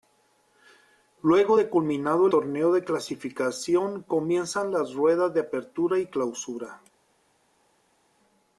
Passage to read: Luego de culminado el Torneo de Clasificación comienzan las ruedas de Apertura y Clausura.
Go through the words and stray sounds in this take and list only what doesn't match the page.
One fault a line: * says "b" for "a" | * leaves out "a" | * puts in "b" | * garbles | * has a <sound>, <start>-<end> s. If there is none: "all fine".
* leaves out "el"